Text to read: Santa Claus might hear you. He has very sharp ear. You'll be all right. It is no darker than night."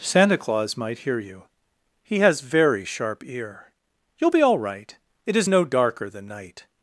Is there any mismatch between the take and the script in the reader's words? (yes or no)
no